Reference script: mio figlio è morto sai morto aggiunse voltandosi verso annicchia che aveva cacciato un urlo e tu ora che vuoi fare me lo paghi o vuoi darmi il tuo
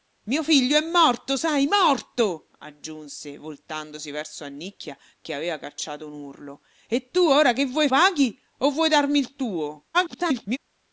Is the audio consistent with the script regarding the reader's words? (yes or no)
no